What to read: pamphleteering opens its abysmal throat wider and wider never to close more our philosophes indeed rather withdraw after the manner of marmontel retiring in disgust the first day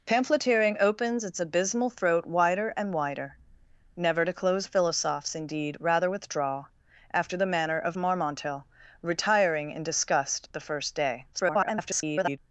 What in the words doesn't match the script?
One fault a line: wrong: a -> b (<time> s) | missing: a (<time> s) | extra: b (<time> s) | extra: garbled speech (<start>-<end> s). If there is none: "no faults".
missing: more our (4.7 s)
extra: garbled speech (11.3-12.4 s)